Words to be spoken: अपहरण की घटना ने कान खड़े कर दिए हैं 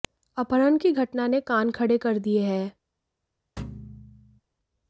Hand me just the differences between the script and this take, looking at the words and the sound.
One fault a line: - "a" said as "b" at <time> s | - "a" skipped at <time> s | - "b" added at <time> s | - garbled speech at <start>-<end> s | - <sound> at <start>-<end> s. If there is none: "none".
- thud at 3.6-4.4 s